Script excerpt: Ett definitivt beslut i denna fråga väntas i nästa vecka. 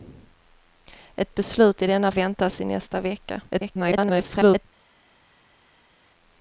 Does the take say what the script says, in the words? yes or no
no